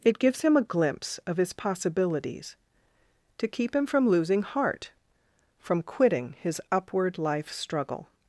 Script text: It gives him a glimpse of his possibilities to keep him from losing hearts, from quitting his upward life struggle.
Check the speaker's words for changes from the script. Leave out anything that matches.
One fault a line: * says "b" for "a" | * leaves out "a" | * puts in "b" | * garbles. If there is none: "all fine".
* says "heart" for "hearts"